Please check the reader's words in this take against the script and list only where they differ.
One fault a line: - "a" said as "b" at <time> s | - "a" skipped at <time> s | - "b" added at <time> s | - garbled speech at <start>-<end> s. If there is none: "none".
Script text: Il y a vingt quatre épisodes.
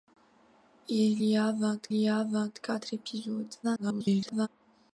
- "y a vingt" added at 1.9 s
- garbled speech at 3.6-4.5 s